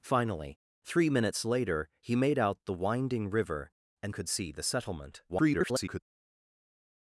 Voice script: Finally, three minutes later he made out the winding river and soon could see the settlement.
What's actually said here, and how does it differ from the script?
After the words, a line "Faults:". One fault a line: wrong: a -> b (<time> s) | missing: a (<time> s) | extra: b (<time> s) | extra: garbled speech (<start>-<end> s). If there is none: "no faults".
Finally, three minutes later he made out the winding river and could see the settlement. [garbled]
Faults:
missing: soon (4.2 s)
extra: garbled speech (5.3-6.0 s)